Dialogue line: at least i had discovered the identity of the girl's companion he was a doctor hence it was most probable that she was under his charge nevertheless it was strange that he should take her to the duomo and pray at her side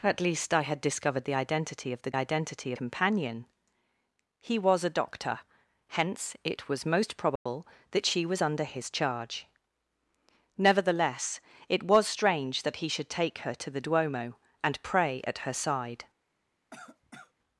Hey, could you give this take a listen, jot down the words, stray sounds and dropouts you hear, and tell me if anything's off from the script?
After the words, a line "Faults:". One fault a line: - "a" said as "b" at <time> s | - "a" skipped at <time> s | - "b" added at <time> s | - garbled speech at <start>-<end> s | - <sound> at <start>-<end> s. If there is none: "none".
at least i had discovered the identity of the identity companion he was a doctor hence it was most probable that she was under his charge nevertheless it was strange that he should take her to the duomo and pray at her side
Faults:
- "girl's" said as "identity" at 2.2 s
- dropout at 7.4-7.5 s
- cough at 16.7-17.3 s